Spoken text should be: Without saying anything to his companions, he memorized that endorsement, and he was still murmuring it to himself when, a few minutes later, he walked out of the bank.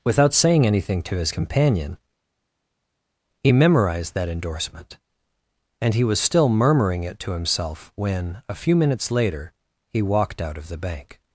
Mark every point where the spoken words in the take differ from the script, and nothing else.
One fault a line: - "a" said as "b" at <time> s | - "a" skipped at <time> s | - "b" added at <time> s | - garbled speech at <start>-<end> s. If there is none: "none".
- "companions" said as "companion" at 1.3 s